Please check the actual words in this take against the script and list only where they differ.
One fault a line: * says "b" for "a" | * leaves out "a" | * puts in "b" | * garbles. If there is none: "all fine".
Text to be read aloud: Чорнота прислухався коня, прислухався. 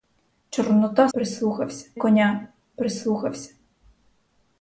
all fine